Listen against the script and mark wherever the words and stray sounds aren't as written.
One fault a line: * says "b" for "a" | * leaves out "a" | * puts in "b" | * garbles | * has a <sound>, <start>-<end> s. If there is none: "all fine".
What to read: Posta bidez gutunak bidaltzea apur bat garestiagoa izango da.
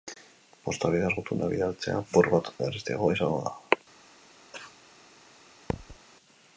* has a cough, 4.5-4.8 s
* has a thud, 5.7-6.0 s